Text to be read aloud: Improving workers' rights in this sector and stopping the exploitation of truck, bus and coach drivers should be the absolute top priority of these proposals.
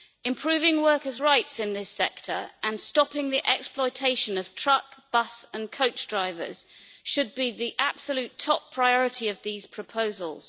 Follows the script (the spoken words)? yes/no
yes